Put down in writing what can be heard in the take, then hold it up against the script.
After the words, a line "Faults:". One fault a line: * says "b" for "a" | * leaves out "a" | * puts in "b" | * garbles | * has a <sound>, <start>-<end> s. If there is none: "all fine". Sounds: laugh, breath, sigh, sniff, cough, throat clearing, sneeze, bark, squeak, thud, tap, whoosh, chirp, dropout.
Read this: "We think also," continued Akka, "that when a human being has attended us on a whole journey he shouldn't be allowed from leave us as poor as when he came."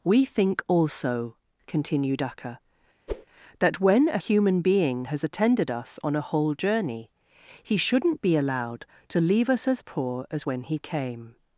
"We think also," continued Akka, "that when a human being has attended us on a whole journey he shouldn't be allowed to leave us as poor as when he came."
Faults:
* has a whoosh, 3.1-3.3 s
* says "to" for "from"